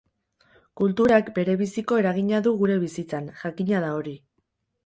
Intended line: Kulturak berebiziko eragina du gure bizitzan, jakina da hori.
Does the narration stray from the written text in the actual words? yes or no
no